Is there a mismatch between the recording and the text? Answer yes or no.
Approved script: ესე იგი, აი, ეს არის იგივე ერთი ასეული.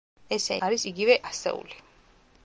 yes